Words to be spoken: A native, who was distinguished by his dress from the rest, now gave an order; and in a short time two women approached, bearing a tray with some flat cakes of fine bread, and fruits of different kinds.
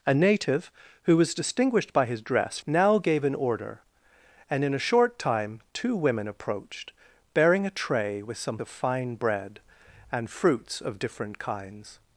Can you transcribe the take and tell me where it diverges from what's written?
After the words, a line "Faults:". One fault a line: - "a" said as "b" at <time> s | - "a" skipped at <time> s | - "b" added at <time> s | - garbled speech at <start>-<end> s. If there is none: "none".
A native, who was distinguished by his dress now gave an order; and in a short time two women approached, bearing a tray with some of fine bread, and fruits of different kinds.
Faults:
- "from the rest" skipped at 2.6 s
- "flat cakes" skipped at 8.6 s